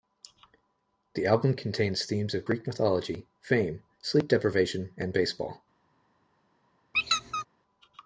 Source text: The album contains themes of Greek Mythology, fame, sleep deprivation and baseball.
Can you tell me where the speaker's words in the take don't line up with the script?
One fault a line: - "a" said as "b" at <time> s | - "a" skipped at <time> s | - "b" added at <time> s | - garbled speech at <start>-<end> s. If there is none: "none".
none